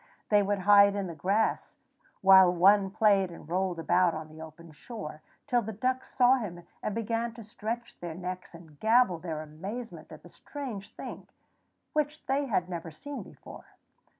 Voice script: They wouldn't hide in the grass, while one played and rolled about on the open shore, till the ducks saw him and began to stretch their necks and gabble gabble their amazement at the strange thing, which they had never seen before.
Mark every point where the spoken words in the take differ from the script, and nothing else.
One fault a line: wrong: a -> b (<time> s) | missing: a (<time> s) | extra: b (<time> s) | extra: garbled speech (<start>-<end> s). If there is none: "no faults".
wrong: wouldn't -> would (0.4 s)
missing: gabble (9.2 s)